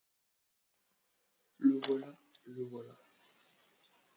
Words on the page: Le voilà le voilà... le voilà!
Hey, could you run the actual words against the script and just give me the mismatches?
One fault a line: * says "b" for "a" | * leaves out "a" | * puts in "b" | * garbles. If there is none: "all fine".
* leaves out "le voilà"